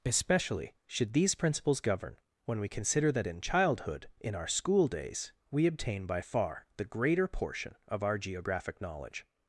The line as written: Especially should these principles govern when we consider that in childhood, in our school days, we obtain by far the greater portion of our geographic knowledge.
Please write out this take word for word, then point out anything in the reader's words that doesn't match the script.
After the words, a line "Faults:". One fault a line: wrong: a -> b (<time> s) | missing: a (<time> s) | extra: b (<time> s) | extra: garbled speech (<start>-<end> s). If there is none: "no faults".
Especially should these principles govern when we consider that in childhood, in our school days, we obtain by far the greater portion of our geographic knowledge.
Faults:
no faults